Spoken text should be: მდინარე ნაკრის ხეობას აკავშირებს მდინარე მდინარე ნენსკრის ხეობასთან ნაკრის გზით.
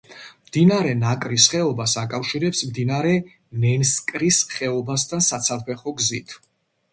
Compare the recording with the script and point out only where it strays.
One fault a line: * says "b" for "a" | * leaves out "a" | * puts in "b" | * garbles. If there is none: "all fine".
* leaves out "მდინარე"
* says "საცალფეხო" for "ნაკრის"